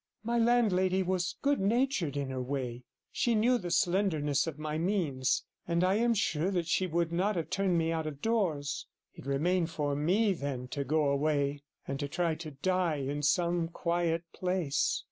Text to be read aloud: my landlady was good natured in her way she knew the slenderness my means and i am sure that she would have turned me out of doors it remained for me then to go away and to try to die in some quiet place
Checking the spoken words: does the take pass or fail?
fail